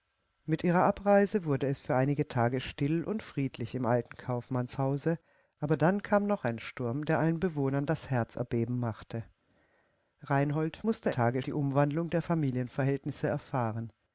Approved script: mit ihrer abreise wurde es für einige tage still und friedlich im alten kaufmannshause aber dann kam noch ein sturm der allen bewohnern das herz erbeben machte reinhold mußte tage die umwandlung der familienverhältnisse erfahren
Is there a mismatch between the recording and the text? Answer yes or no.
no